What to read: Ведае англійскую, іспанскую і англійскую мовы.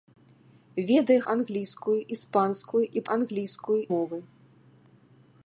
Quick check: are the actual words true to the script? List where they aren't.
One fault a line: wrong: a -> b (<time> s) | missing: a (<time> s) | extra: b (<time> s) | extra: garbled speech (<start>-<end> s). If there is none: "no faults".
no faults